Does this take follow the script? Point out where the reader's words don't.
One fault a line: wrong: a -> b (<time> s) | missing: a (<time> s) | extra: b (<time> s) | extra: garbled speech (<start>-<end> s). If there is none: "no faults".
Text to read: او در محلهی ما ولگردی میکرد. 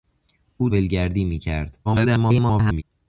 missing: در محلهی ما (0.7 s)
extra: garbled speech (1.8-2.8 s)